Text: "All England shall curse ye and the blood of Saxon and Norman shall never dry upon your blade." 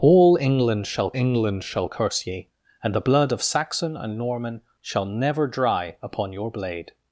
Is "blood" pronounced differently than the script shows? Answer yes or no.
no